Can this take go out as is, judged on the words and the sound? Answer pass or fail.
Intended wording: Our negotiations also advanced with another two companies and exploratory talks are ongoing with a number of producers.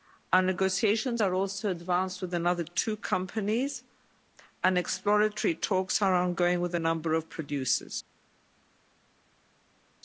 fail